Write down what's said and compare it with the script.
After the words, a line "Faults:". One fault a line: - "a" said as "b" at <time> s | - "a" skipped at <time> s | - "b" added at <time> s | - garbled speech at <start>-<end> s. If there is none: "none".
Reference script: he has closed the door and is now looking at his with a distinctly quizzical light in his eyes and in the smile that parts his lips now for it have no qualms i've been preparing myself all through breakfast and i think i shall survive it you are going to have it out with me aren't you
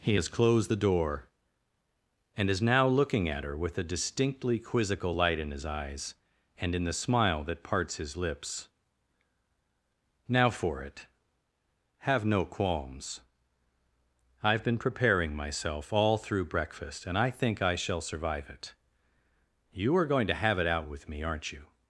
he has closed the door and is now looking at her with a distinctly quizzical light in his eyes and in the smile that parts his lips now for it have no qualms i've been preparing myself all through breakfast and i think i shall survive it you are going to have it out with me aren't you
Faults:
- "his" said as "her" at 3.4 s